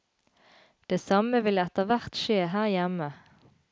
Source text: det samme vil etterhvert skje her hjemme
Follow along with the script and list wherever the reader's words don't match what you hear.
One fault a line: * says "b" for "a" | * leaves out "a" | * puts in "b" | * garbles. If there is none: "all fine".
all fine